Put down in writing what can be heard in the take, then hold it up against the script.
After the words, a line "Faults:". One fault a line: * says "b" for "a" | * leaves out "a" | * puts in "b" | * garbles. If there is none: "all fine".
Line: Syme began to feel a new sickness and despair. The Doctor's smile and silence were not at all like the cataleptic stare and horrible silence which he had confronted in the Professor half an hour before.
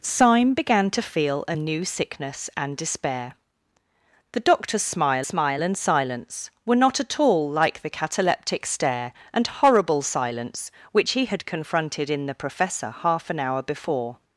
Syme began to feel a new sickness and despair. The Doctor's smile smile and silence were not at all like the cataleptic stare and horrible silence which he had confronted in the Professor half an hour before.
Faults:
* puts in "smile"